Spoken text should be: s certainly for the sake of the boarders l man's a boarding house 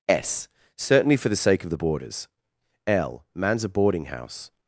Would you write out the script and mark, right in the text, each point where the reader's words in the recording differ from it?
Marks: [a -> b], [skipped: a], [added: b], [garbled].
s certainly for the sake of the boarders l man's a boarding house